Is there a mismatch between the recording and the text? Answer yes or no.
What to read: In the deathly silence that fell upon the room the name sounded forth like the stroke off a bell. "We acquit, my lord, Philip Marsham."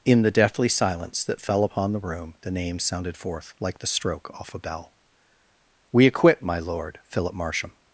no